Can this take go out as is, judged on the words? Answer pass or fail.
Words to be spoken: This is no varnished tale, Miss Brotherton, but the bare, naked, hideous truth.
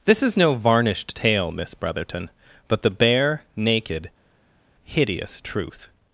pass